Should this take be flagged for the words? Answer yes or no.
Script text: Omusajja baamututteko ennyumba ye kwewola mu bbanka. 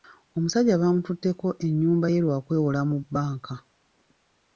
yes